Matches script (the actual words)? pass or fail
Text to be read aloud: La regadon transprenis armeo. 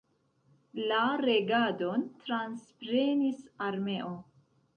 pass